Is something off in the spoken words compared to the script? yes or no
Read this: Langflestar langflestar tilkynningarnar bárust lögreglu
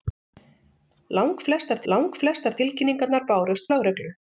no